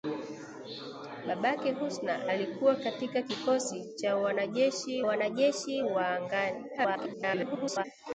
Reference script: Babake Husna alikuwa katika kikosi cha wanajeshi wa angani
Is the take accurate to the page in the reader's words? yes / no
no